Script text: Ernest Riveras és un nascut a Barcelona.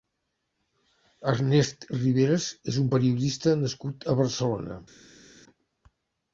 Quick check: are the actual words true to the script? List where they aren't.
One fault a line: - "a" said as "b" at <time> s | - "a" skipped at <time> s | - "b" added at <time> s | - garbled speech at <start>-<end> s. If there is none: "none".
- "periodista" added at 3.0 s